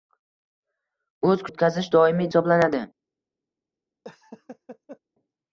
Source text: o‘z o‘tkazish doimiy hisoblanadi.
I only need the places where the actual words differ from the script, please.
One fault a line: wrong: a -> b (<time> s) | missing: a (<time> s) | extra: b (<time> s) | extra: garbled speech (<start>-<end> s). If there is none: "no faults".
no faults